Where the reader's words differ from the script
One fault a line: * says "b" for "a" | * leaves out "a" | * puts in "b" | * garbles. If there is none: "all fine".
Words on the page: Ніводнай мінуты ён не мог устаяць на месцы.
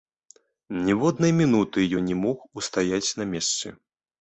all fine